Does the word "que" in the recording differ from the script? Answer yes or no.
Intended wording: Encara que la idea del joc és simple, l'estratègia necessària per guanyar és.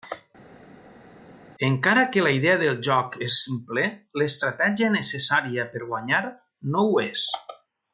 no